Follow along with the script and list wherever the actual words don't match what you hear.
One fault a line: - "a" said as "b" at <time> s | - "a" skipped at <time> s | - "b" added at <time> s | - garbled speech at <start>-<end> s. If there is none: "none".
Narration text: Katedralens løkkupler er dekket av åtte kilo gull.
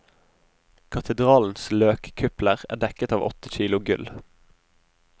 none